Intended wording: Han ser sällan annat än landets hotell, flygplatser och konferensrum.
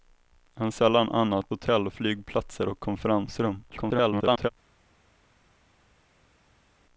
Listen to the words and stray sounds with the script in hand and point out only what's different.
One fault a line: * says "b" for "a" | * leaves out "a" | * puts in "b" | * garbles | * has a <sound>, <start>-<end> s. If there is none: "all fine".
* leaves out "ser"
* leaves out "än landets"
* garbles